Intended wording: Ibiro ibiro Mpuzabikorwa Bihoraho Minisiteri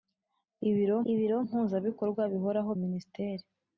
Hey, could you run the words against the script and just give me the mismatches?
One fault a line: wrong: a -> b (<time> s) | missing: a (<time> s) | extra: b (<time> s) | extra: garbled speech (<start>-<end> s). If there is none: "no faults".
no faults